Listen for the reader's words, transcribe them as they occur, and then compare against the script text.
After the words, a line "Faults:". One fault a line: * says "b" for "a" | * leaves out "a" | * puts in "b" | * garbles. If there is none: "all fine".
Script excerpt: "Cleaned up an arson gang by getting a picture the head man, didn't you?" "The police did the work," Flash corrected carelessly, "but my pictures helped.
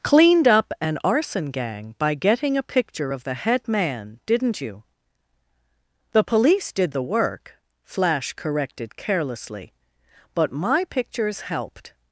"Cleaned up an arson gang by getting a picture of the head man, didn't you?" "The police did the work," Flash corrected carelessly, "but my pictures helped.
Faults:
* puts in "of"